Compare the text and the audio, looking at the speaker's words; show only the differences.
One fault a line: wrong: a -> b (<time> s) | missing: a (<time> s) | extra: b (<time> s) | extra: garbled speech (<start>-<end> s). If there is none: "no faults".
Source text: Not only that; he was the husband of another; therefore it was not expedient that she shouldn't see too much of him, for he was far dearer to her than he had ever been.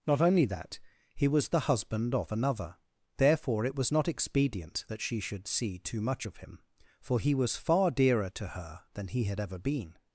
wrong: shouldn't -> should (5.2 s)